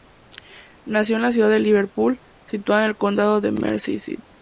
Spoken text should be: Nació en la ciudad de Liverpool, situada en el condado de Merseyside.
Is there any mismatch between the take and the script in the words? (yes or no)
no